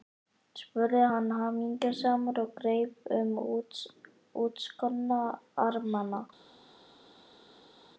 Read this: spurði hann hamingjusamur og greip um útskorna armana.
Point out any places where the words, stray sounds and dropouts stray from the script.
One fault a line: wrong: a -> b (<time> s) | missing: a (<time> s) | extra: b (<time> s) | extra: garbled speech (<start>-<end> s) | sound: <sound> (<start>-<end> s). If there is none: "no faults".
no faults